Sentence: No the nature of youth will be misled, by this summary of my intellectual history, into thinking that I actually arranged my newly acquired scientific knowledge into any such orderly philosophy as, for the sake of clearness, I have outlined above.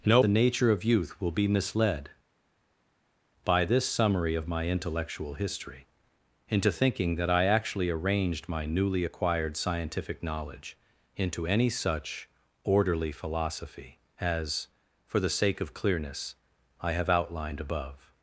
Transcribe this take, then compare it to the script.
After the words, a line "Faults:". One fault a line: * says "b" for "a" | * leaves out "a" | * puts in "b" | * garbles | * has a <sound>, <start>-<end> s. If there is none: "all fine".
No the nature of youth will be misled, by this summary of my intellectual history, into thinking that I actually arranged my newly acquired scientific knowledge into any such orderly philosophy as, for the sake of clearness, I have outlined above.
Faults:
all fine